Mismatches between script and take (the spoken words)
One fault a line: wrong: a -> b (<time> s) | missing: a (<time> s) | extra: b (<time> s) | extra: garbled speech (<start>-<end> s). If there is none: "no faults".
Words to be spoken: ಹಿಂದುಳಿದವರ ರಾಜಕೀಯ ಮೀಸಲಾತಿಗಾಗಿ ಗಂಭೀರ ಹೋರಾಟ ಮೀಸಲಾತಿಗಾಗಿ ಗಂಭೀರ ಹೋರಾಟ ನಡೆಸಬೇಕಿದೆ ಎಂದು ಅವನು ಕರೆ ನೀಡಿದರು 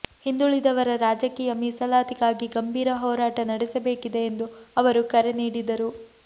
missing: ಮೀಸಲಾತಿಗಾಗಿ ಗಂಭೀರ ಹೋರಾಟ (3.4 s)
wrong: ಅವನು -> ಅವರು (4.8 s)